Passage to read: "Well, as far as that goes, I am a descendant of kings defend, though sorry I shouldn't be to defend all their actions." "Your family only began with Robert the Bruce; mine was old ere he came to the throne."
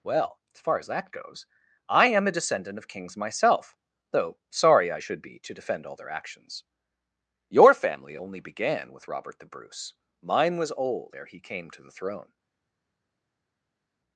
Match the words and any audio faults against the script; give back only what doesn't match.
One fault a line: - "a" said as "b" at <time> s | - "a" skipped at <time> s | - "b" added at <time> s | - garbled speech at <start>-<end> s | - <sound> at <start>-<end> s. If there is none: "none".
- "defend" said as "myself" at 3.1 s
- "shouldn't" said as "should" at 5.0 s